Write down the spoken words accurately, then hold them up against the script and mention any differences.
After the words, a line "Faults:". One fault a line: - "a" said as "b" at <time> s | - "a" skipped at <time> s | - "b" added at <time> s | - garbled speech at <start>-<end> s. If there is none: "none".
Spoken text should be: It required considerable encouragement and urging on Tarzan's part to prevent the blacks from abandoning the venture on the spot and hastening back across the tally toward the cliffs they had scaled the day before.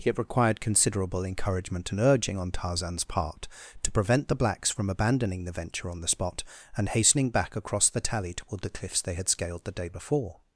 It required considerable encouragement and urging on Tarzan's part to prevent the blacks from abandoning the venture on the spot and hastening back across the tally toward the cliffs they had scaled the day before.
Faults:
none